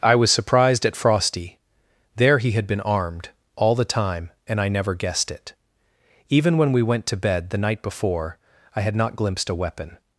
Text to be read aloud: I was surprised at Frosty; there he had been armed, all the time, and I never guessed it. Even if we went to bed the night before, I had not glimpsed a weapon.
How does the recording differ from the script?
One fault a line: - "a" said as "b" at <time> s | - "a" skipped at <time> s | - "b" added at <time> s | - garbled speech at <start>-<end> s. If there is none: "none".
- "if" said as "when" at 6.6 s